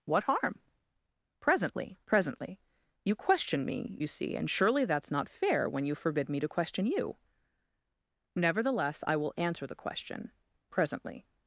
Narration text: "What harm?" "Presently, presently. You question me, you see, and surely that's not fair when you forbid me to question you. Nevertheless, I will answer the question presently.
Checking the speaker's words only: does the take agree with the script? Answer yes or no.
yes